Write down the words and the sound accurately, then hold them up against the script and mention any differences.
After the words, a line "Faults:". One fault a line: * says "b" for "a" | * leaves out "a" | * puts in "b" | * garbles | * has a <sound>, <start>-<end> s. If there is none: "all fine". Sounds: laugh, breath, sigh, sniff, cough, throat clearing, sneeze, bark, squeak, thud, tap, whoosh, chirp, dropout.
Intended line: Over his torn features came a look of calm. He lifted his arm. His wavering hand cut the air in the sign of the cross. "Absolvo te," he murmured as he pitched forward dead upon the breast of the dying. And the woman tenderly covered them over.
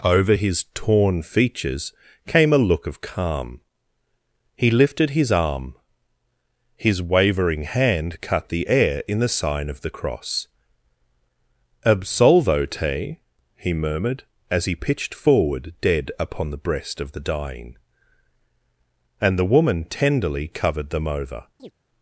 Over his torn features came a look of calm. He lifted his arm. His wavering hand cut the air in the sign of the cross. "Absolvo te," he murmured as he pitched forward dead upon the breast of the dying. And the woman tenderly covered them over.
Faults:
* has a chirp, 21.6-21.7 s